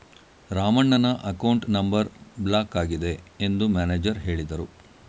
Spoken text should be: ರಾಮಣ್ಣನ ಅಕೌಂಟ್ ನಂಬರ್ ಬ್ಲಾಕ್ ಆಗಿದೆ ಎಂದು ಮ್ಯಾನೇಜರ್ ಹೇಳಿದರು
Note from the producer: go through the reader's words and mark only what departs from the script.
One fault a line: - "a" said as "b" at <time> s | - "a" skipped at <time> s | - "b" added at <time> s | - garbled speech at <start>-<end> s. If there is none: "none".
none